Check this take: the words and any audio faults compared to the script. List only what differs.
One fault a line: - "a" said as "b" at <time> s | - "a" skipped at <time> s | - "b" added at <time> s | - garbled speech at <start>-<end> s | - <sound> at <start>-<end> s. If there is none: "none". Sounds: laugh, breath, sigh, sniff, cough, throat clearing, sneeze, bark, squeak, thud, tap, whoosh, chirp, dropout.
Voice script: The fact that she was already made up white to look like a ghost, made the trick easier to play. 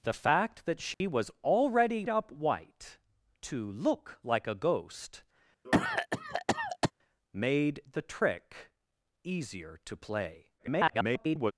- dropout at 0.9-1.0 s
- "made" skipped at 2.1 s
- cough at 5.6-6.9 s
- garbled speech at 10.6-11.5 s